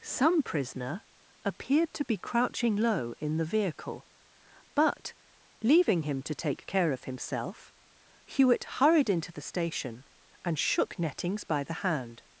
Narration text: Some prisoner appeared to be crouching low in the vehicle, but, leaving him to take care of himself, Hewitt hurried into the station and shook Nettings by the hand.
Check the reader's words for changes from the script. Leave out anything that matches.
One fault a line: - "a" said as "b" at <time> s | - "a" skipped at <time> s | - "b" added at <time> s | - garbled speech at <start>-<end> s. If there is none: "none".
none